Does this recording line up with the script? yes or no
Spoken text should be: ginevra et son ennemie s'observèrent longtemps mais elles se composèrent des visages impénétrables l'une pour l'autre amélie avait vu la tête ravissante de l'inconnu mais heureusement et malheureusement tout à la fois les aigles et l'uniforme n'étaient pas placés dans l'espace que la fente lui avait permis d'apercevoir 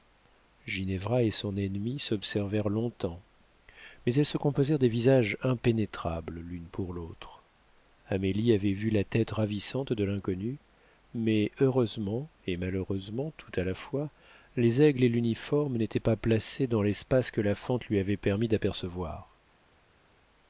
yes